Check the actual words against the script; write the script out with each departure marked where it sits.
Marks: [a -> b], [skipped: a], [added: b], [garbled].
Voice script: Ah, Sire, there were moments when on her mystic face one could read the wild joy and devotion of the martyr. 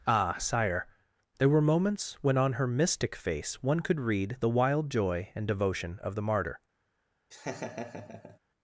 Ah, Sire, there were moments when on her mystic face one could read the wild joy and devotion of the martyr.